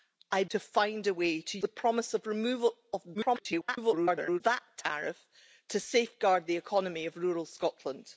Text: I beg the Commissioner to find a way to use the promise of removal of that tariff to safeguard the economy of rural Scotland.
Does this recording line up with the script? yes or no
no